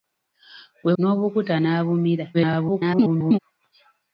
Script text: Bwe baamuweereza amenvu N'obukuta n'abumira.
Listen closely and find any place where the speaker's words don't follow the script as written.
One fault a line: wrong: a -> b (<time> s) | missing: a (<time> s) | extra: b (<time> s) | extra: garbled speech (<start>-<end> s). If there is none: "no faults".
missing: baamuweereza amenvu (0.9 s)
extra: garbled speech (2.3-3.4 s)